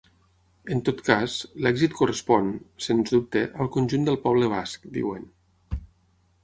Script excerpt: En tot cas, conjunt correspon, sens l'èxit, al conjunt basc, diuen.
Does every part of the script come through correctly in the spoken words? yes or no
no